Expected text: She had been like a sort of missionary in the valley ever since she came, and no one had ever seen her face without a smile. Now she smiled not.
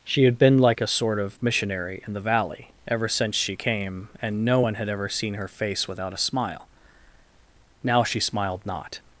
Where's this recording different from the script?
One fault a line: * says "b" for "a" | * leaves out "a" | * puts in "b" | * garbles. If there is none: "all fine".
all fine